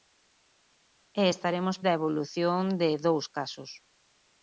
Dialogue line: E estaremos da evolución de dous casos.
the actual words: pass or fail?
pass